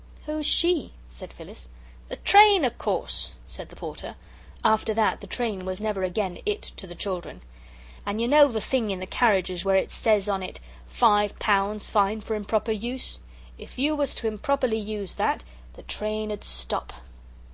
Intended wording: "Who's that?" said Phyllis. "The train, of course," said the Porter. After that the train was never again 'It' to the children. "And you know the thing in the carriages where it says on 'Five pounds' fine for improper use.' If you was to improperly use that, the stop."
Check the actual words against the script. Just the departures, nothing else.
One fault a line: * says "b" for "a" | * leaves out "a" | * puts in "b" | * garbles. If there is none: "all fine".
* says "she" for "that"
* puts in "it"
* puts in "train ud"